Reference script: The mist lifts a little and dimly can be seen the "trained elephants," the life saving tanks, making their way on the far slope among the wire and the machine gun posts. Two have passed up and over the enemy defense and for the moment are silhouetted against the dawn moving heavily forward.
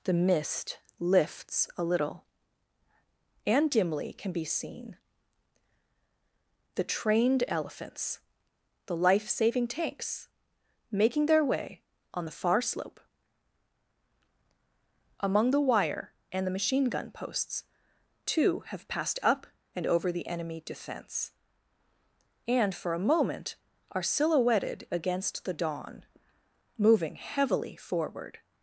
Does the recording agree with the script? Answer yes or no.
no